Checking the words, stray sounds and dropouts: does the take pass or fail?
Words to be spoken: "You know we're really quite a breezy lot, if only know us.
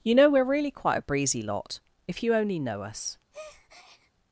fail